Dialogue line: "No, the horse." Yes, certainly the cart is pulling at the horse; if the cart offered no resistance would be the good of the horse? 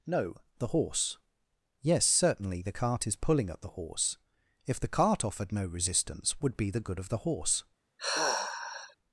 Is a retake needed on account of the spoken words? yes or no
no